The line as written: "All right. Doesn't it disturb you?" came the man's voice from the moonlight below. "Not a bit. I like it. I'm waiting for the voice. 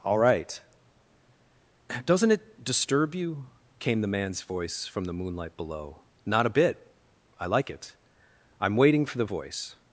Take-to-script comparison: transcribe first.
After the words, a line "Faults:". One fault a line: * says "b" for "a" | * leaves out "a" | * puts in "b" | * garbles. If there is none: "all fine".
"All right. Doesn't it disturb you?" came the man's voice from the moonlight below. "Not a bit. I like it. I'm waiting for the voice.
Faults:
all fine